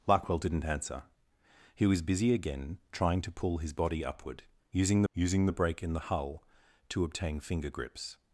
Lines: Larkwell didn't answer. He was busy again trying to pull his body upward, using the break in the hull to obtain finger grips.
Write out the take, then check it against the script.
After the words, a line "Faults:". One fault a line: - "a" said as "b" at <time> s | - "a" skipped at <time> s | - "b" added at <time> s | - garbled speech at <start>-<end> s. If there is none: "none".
Larkwell didn't answer. He was busy again trying to pull his body upward, using using the break in the hull to obtain finger grips.
Faults:
- "using" added at 5.1 s